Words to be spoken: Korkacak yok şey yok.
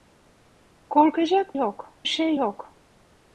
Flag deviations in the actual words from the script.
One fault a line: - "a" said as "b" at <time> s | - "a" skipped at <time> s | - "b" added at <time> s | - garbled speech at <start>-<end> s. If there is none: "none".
none